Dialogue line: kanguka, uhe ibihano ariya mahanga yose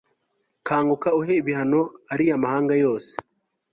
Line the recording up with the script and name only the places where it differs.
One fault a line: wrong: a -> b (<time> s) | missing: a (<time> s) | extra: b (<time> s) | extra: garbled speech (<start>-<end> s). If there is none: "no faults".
no faults